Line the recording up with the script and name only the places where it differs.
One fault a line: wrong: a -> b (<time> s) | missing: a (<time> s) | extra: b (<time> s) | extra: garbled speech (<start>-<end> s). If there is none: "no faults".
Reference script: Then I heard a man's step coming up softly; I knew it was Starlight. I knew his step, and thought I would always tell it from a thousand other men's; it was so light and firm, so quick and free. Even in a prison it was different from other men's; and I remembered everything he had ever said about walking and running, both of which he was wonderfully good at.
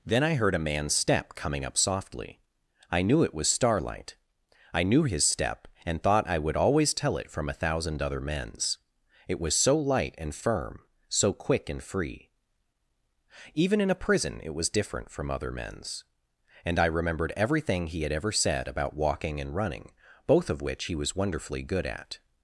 no faults